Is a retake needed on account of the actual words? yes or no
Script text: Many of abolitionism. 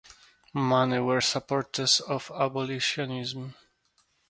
yes